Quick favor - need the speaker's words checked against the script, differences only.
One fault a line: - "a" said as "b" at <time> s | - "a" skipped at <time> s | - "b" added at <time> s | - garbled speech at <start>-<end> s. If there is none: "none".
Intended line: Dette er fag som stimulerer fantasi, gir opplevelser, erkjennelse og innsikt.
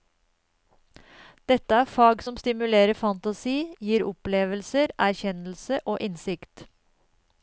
none